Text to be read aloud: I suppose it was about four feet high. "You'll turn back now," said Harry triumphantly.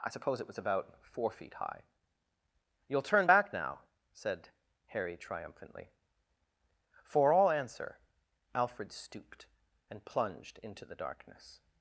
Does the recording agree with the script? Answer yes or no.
no